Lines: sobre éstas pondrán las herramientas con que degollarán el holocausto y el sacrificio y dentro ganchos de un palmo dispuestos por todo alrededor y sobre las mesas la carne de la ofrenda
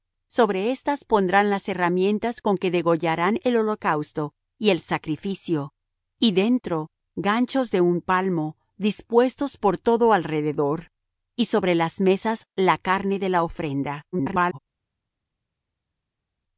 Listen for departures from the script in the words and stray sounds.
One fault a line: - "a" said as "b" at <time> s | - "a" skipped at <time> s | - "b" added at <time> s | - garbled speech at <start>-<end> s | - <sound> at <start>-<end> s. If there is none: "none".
- garbled speech at 14.1-14.6 s